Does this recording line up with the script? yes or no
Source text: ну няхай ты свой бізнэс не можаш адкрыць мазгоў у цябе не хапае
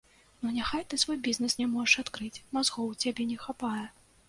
yes